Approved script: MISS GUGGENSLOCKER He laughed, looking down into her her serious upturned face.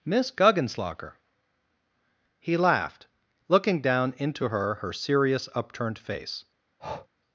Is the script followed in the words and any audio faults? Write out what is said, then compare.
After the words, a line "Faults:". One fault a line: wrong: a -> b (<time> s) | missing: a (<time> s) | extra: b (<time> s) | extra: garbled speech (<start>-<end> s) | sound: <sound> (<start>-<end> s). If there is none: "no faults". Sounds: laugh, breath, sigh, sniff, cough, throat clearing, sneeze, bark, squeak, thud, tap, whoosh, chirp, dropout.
MISS GUGGENSLOCKER He laughed, looking down into her her serious upturned face.
Faults:
sound: breath (6.8-7.1 s)